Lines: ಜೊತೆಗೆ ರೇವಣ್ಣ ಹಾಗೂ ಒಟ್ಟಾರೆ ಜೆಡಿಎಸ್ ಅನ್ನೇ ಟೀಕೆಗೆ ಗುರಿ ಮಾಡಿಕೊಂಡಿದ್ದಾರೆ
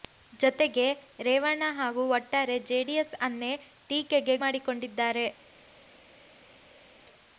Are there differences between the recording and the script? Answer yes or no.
yes